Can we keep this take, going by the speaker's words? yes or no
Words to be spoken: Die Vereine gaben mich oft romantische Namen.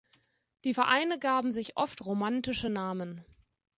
no